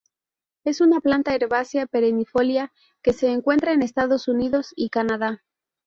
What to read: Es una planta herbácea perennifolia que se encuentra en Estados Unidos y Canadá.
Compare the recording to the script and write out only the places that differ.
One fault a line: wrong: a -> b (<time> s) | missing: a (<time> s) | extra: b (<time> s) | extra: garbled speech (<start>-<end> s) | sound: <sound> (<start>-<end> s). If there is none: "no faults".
no faults